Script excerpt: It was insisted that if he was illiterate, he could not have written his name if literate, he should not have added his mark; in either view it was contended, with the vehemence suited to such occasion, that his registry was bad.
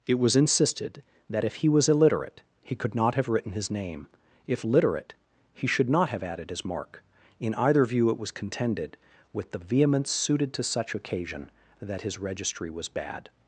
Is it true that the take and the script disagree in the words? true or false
false